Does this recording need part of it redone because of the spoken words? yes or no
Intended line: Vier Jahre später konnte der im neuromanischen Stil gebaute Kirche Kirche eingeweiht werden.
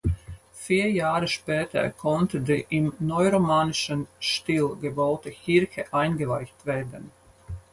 yes